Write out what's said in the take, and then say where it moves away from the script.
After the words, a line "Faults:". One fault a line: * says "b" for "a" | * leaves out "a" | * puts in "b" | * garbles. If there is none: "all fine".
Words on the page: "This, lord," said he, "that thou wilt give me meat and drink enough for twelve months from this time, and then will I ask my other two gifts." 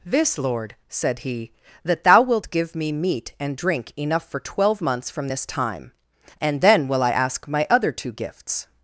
"This, lord," said he, "that thou wilt give me meat and drink enough for twelve months from this time, and then will I ask my other two gifts."
Faults:
all fine